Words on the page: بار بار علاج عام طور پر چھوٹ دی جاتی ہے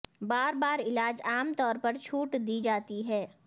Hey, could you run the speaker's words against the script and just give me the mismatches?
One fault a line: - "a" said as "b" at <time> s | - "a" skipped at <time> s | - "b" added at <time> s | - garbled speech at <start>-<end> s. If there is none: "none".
none